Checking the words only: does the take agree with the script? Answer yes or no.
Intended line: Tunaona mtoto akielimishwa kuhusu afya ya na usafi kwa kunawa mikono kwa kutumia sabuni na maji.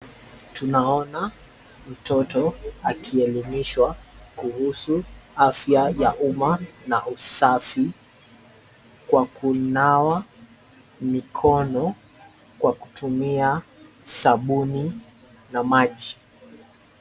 no